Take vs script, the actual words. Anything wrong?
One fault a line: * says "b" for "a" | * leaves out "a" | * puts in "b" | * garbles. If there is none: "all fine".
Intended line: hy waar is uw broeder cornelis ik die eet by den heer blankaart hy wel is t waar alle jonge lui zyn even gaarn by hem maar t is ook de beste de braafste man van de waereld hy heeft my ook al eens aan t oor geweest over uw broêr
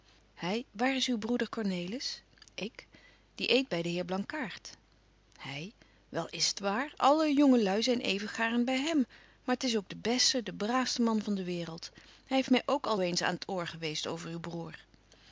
all fine